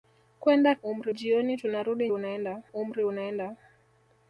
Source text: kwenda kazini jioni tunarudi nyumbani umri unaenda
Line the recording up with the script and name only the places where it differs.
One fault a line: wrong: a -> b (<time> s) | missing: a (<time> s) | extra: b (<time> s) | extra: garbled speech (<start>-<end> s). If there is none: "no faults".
wrong: kazini -> umri (0.7 s)
wrong: nyumbani -> unaenda (2.1 s)